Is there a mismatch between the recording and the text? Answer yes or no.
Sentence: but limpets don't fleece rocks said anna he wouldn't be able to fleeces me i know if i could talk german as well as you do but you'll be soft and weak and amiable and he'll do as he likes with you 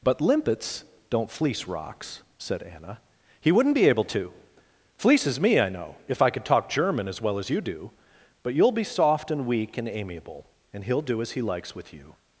no